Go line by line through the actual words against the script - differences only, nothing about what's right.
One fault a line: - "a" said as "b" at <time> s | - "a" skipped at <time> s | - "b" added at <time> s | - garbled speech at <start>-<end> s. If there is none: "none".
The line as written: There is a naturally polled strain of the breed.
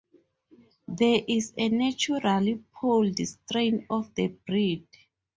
none